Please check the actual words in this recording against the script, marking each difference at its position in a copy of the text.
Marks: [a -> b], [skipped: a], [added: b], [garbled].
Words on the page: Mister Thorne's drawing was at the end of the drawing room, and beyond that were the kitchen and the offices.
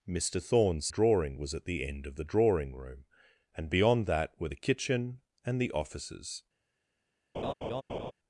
Mister Thorne's drawing was at the end of the drawing room, and beyond that were the kitchen and the offices.